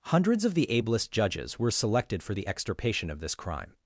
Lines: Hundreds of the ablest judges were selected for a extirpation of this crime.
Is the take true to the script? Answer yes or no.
no